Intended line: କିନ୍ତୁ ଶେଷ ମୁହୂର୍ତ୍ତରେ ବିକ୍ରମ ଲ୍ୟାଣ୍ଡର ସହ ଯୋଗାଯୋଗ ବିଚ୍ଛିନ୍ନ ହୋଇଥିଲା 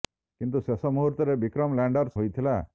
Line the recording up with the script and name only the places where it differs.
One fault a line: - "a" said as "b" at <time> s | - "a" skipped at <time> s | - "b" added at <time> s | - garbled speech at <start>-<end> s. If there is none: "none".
- "ସହ ଯୋଗାଯୋଗ ବିଚ୍ଛିନ୍ନ" skipped at 2.1 s